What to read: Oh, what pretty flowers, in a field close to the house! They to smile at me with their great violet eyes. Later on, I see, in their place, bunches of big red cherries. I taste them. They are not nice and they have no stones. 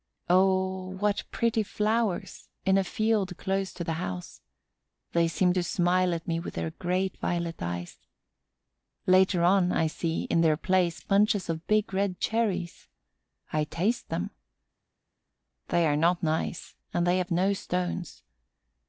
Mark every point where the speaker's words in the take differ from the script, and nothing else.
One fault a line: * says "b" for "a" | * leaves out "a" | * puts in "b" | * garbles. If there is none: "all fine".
* puts in "seem"